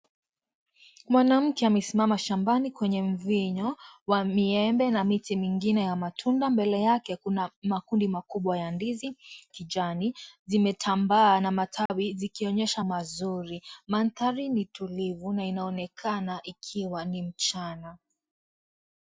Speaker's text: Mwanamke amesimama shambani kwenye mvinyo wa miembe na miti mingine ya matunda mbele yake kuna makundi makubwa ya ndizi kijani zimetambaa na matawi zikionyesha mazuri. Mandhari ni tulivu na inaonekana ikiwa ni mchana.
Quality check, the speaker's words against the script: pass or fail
pass